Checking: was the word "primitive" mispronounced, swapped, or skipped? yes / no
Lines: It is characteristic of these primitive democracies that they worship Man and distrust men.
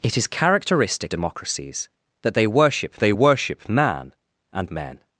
yes